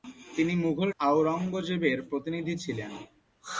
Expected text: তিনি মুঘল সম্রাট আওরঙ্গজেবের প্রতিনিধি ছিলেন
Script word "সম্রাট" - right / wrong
wrong